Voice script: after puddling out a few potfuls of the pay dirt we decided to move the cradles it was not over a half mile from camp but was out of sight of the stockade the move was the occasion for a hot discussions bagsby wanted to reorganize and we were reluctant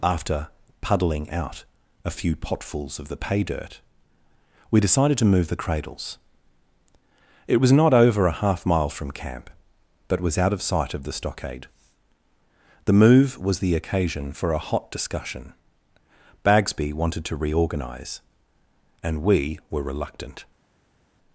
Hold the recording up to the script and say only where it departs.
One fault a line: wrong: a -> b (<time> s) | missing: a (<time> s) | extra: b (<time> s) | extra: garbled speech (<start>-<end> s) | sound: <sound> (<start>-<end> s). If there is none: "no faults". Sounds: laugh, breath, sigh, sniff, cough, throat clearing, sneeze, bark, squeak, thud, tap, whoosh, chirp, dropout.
wrong: discussions -> discussion (14.9 s)